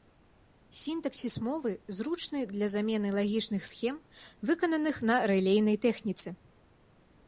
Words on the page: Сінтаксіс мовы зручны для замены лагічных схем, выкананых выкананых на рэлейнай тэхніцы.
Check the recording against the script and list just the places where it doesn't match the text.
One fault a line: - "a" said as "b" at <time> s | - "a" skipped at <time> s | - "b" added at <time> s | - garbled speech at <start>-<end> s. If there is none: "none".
- "выкананых" skipped at 5.0 s